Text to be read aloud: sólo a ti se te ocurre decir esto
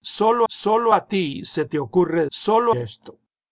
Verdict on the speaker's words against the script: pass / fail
fail